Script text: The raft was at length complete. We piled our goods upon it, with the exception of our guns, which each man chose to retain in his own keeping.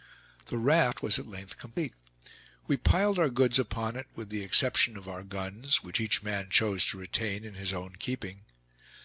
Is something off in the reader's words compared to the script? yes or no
no